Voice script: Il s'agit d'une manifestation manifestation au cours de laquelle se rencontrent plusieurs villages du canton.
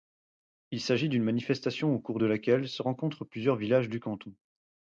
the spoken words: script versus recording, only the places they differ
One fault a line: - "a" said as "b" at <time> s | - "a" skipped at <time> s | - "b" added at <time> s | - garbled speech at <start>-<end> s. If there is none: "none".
- "manifestation" skipped at 1.9 s